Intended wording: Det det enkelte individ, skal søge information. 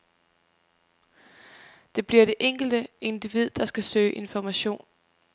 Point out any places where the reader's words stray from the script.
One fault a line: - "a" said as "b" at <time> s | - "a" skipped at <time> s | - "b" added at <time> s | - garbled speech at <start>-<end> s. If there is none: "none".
- "bliver" added at 2.1 s
- "der" added at 3.5 s